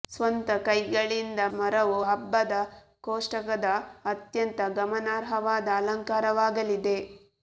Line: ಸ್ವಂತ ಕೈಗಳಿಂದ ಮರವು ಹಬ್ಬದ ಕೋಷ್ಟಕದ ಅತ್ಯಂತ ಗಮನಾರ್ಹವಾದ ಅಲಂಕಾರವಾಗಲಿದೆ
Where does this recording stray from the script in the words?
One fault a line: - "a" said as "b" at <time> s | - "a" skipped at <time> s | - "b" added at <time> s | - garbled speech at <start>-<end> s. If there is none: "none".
none